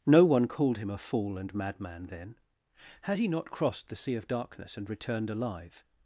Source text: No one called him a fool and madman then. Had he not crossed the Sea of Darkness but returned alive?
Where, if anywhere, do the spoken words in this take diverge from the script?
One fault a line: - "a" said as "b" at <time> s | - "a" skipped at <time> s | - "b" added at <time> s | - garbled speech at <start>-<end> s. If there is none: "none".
- "but" said as "and" at 4.8 s